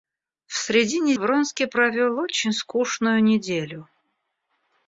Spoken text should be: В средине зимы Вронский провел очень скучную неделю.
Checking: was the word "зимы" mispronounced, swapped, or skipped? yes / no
yes